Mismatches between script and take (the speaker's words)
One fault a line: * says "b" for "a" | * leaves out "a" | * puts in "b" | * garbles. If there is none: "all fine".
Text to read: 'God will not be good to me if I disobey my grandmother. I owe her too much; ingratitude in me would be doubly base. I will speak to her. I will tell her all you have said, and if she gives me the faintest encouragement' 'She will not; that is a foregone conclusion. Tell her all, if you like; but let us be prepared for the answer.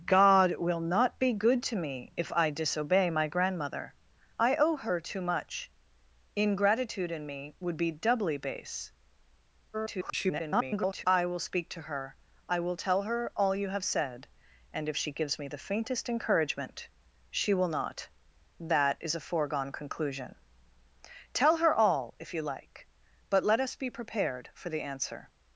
* garbles